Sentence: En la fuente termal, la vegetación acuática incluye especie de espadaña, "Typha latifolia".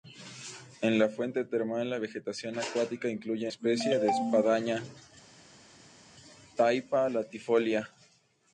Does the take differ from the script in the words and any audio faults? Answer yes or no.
no